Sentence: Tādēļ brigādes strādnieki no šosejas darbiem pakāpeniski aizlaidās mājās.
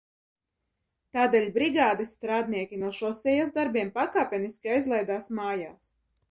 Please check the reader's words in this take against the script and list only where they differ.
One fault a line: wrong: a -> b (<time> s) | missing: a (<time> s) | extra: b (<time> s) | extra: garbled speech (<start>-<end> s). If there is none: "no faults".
no faults